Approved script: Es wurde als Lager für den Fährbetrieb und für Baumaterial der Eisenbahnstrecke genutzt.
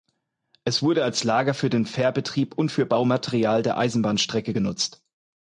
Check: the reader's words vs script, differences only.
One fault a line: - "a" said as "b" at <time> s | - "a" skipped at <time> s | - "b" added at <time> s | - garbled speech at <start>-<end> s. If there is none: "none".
none